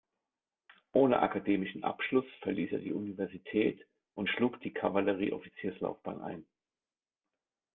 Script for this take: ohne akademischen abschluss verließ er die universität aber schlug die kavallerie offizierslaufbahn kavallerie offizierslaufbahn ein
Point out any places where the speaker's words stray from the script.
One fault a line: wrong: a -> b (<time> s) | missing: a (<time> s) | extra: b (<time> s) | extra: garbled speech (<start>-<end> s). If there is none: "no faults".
wrong: aber -> und (4.2 s)
missing: kavallerie offizierslaufbahn (6.2 s)